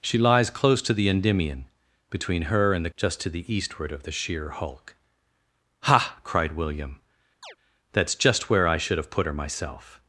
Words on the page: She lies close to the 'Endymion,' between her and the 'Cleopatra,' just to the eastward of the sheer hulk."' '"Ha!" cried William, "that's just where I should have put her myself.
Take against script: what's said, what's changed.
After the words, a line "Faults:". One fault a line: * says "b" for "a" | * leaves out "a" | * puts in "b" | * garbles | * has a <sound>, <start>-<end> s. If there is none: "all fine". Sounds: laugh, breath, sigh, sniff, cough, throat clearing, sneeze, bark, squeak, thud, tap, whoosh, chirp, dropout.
She lies close to the 'Endymion,' between her and the,' 'Just to the eastward of the sheer hulk."' '"Ha!" cried William, "that's just where I should have put her myself.
Faults:
* leaves out "Cleopatra"
* has a chirp, 7.4-7.6 s